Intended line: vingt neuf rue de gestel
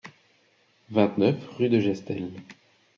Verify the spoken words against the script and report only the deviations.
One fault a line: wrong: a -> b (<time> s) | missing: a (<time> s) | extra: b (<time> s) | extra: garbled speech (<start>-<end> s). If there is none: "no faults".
no faults